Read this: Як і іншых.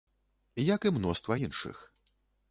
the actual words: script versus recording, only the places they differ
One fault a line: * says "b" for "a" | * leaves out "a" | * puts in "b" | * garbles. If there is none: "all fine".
* puts in "мноства"